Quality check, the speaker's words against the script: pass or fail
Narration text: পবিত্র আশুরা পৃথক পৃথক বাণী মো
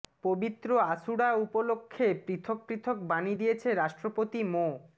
fail